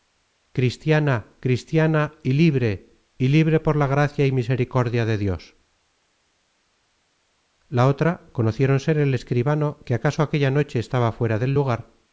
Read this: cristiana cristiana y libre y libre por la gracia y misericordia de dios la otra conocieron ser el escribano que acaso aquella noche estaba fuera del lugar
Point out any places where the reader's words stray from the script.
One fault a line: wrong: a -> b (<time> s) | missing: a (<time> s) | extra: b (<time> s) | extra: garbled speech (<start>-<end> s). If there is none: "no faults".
no faults